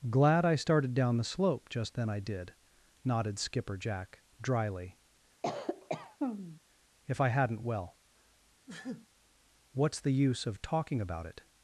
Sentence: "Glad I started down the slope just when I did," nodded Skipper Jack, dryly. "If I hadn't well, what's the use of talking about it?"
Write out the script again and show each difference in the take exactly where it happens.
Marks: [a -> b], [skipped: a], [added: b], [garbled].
"Glad I started down the slope just [when -> then] I did," nodded Skipper Jack, dryly. "If I hadn't well, what's the use of talking about it?"